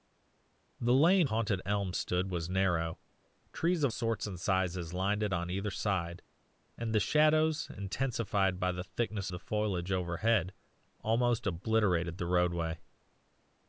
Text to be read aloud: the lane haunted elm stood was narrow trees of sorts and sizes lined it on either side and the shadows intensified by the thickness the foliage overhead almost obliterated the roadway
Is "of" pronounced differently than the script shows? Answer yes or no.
no